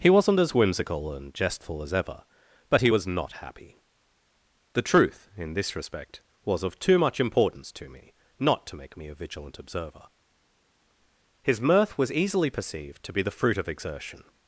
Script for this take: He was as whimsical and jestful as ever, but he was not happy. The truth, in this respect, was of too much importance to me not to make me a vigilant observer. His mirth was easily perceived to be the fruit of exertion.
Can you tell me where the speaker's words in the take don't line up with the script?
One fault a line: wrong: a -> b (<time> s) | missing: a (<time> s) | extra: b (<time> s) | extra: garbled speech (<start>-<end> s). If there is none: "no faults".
wrong: was -> wasn't (0.1 s)